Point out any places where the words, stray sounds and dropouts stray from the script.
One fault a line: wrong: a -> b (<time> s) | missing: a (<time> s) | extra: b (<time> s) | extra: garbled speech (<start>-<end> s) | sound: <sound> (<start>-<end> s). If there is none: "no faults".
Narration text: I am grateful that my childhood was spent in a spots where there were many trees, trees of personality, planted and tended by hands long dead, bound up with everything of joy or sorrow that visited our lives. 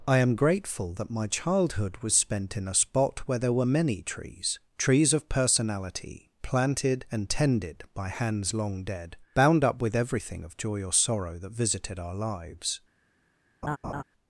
wrong: spots -> spot (2.7 s)
sound: laugh (13.6-14.0 s)